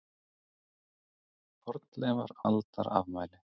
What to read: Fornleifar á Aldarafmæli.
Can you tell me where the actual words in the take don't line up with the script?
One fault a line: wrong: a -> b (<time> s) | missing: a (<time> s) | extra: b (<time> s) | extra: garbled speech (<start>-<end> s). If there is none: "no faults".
no faults